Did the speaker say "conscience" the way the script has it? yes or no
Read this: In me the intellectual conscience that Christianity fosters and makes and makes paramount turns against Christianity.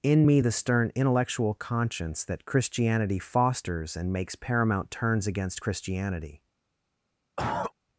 yes